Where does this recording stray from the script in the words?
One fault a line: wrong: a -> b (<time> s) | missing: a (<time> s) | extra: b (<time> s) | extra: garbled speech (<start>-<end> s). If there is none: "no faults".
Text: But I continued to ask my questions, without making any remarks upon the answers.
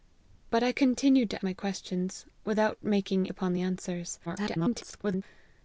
missing: ask (1.4 s)
missing: any remarks (3.3 s)
extra: garbled speech (4.3-5.2 s)